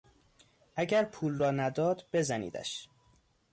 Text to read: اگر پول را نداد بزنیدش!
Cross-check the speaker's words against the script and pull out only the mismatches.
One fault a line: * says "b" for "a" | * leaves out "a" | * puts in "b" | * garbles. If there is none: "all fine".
all fine